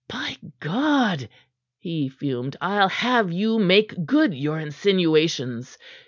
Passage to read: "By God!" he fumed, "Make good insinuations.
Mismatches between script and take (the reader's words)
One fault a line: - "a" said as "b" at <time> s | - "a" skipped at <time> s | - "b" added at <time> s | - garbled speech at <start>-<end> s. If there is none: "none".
- "I'll have you" added at 2.6 s
- "your" added at 4.4 s